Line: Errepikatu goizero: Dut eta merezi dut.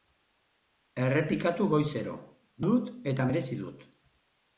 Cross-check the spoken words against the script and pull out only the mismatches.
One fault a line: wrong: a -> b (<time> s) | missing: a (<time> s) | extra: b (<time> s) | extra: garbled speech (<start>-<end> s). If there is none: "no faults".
no faults